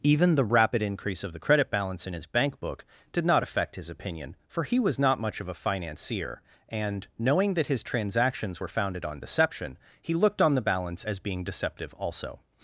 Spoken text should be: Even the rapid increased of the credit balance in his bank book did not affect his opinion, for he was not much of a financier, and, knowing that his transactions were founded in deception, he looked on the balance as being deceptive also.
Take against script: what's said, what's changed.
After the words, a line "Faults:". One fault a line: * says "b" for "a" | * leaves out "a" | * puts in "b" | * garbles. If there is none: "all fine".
Even the rapid increase of the credit balance in his bank book did not affect his opinion, for he was not much of a financier, and, knowing that his transactions were founded on deception, he looked on the balance as being deceptive also.
Faults:
* says "increase" for "increased"
* says "on" for "in"